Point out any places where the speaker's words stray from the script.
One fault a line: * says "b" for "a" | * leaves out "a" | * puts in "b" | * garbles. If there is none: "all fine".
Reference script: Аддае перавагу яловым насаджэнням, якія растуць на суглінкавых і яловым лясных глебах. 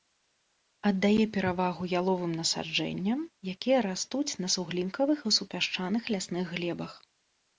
* says "супясчаных" for "яловым"